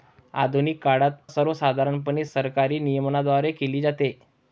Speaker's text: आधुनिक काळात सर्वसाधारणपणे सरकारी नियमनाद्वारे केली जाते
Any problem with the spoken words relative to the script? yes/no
no